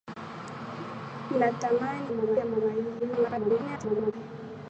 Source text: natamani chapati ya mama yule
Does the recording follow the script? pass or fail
fail